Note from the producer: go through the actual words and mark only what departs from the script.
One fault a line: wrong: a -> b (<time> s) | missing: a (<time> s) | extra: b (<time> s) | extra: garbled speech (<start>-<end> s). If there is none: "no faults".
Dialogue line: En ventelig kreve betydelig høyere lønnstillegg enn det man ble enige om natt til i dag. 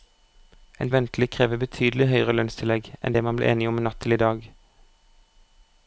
no faults